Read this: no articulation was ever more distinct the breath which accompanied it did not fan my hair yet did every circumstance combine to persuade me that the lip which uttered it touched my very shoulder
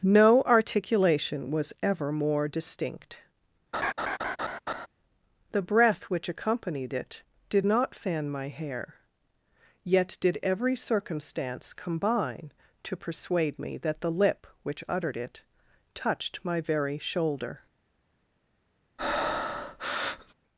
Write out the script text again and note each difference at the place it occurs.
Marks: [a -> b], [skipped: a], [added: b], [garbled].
no articulation was ever more distinct the breath which accompanied it did not fan my hair yet did every circumstance combine to persuade me that the lip which uttered it touched my very shoulder